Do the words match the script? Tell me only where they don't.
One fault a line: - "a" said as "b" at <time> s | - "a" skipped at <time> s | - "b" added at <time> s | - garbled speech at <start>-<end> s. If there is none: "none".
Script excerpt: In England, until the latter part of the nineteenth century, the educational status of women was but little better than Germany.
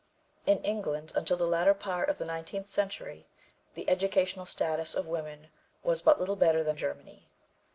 none